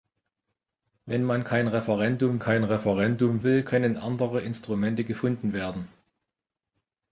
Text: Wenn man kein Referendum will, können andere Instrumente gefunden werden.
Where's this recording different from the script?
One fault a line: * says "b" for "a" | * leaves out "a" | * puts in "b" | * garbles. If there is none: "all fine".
* puts in "kein Referendum"